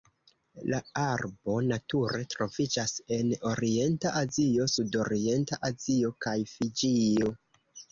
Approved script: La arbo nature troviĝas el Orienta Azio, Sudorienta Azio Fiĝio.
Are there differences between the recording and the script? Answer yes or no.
yes